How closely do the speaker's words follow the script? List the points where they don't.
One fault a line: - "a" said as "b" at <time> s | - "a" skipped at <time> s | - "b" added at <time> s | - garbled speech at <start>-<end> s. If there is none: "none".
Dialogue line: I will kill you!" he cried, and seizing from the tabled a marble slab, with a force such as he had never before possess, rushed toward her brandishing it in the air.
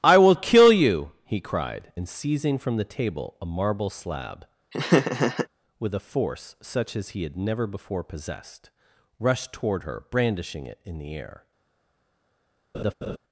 - "tabled" said as "table" at 2.8 s
- "possess" said as "possessed" at 8.0 s